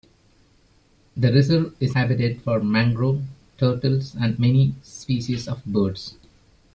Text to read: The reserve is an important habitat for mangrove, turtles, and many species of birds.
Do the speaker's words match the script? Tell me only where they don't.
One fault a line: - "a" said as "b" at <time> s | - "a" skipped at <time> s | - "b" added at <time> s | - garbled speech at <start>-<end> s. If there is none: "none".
- "an important" skipped at 1.9 s